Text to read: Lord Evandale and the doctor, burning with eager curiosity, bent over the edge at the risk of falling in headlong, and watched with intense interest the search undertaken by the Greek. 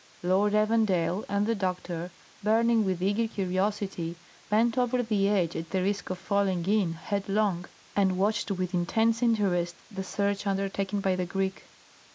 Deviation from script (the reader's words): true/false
false